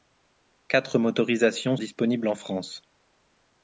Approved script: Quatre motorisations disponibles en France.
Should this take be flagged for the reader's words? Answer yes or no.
no